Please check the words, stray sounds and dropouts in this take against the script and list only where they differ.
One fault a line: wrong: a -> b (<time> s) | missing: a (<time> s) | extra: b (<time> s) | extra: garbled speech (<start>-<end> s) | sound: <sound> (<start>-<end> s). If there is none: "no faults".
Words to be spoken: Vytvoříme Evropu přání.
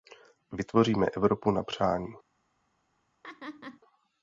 extra: na (1.5 s)
sound: laugh (3.2-3.8 s)